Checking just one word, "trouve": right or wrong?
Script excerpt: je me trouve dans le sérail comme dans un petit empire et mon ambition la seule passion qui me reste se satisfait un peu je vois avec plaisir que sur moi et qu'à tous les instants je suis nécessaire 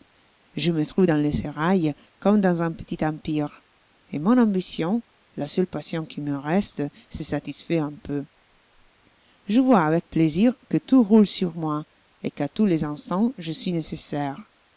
right